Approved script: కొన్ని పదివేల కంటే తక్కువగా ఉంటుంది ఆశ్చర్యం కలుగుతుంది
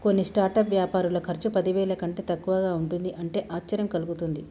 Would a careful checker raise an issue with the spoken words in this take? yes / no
yes